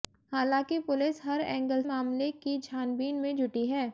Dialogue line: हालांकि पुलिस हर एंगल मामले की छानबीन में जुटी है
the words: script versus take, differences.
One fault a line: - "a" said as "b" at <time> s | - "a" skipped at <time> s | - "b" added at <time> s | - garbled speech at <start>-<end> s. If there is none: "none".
none